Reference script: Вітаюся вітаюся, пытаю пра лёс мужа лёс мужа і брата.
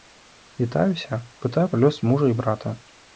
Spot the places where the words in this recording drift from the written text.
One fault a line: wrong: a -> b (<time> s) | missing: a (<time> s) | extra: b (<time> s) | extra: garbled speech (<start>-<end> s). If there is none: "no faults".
missing: вітаюся (1.2 s)
missing: лёс мужа (2.3 s)